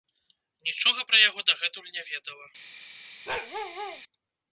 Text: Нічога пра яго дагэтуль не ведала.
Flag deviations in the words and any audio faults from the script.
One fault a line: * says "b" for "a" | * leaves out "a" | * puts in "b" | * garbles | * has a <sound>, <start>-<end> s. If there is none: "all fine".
* has a bark, 3.3-4.0 s